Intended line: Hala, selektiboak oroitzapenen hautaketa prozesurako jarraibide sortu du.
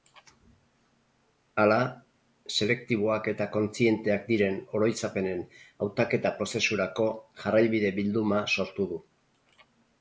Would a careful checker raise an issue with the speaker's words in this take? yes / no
yes